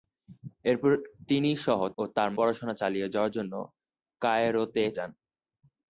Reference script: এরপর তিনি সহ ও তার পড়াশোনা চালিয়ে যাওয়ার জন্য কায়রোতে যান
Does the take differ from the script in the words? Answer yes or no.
no